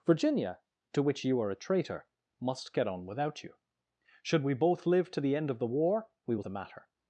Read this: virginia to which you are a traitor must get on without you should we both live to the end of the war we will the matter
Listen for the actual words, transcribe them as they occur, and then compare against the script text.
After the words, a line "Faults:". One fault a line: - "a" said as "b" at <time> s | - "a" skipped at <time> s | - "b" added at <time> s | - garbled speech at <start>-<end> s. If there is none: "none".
virginia to which you are a traitor must get on without you should we both live to the end of the war we will the matter
Faults:
none